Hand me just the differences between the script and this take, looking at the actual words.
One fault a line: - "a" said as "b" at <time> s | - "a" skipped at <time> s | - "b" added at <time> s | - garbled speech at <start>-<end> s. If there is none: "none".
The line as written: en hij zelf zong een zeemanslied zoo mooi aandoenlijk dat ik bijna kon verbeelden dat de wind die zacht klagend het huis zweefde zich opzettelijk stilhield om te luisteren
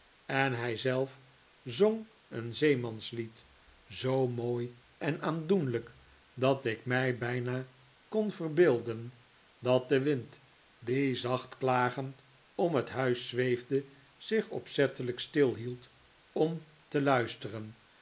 - "en" added at 5.0 s
- "mij" added at 6.8 s
- "om" added at 12.5 s